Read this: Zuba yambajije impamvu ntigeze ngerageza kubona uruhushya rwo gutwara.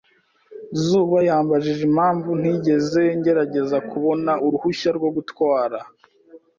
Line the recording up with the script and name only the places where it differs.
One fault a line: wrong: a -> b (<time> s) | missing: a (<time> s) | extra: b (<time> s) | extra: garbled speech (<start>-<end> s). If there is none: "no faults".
no faults